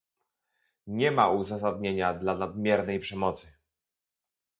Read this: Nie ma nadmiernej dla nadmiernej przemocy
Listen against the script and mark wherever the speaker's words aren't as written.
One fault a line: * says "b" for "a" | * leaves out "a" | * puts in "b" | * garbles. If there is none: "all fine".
* says "uzasadnienia" for "nadmiernej"